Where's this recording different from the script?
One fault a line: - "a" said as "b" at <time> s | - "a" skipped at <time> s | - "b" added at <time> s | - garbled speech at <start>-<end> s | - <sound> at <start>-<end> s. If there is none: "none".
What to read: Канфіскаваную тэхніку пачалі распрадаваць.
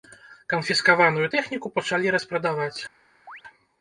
- chirp at 3.3-3.4 s